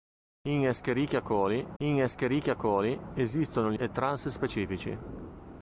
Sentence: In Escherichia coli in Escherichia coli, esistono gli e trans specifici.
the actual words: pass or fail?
pass